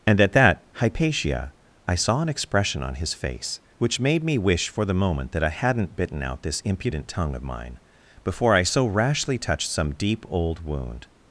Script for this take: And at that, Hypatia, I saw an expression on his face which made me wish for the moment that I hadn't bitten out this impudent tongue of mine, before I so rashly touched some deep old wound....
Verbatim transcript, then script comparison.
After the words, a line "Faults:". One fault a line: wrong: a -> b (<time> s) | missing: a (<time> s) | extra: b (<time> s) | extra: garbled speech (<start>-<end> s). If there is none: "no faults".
And at that, Hypatia, I saw an expression on his face which made me wish for the moment that I hadn't bitten out this impudent tongue of mine, before I so rashly touched some deep old wound....
Faults:
no faults